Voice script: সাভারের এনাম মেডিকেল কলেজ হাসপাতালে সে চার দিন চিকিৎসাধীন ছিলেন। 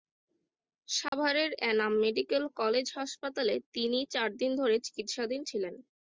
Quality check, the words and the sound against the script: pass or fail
fail